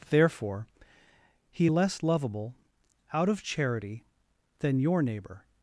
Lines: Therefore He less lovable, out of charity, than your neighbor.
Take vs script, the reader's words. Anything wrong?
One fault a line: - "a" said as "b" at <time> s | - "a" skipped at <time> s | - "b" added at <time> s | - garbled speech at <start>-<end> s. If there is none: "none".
none